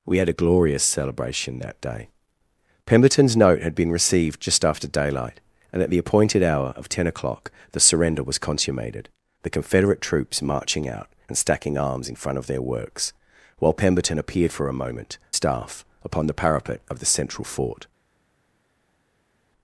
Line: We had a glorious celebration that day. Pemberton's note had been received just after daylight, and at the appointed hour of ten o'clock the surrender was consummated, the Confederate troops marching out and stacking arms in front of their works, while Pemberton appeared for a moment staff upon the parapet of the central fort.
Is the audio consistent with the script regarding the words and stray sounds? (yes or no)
yes